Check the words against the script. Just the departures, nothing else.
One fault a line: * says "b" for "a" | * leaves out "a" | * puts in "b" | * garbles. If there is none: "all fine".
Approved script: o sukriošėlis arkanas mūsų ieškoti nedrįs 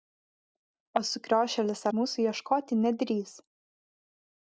* leaves out "arkanas"